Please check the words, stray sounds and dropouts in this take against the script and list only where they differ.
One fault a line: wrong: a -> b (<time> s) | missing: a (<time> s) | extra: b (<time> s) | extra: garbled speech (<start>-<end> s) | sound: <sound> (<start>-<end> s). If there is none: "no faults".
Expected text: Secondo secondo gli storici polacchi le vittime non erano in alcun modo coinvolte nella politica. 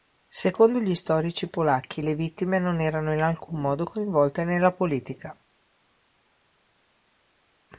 missing: secondo (0.8 s)